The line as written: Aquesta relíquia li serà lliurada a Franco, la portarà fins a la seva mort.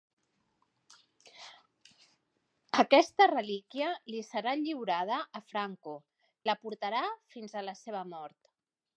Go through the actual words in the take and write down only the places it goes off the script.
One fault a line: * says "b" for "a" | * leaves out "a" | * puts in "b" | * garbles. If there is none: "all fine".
all fine